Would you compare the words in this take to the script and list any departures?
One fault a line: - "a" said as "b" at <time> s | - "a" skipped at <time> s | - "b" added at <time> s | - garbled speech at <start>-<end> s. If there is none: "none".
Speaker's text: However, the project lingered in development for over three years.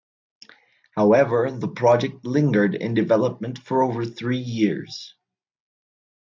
none